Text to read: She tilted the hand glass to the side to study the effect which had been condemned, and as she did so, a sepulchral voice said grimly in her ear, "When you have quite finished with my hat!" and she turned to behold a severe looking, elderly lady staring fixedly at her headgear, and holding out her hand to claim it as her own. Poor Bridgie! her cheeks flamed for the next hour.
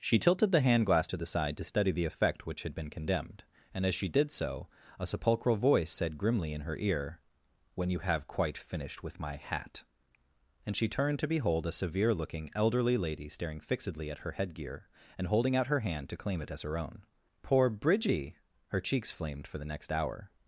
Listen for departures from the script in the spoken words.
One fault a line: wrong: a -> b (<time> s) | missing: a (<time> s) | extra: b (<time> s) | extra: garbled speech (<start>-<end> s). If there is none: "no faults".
no faults